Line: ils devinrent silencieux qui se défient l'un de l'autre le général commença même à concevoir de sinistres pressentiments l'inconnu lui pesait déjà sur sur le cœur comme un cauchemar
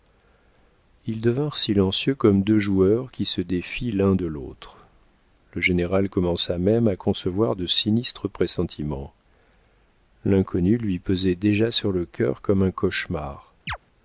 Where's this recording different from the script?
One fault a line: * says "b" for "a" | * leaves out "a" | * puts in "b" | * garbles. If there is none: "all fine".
* puts in "comme deux joueurs"
* leaves out "sur"